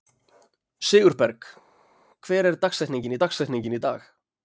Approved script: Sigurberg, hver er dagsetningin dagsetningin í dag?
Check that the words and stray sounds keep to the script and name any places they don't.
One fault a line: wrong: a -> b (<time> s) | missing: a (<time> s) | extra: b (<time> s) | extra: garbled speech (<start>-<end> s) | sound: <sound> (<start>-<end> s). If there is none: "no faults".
no faults